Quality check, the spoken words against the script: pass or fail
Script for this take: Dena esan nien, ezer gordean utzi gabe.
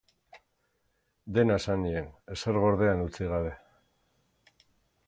pass